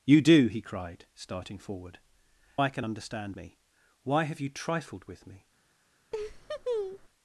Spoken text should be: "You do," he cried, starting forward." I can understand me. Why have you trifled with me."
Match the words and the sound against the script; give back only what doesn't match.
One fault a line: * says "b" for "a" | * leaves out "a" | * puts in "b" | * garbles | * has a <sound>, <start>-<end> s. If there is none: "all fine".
* has a laugh, 6.1-7.1 s